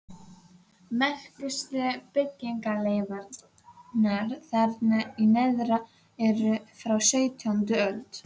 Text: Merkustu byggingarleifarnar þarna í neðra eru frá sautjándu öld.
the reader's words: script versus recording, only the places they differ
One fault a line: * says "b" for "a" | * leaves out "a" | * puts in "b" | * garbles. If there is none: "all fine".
all fine